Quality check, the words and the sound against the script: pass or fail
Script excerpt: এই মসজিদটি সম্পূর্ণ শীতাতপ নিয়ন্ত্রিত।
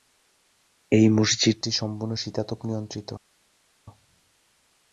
pass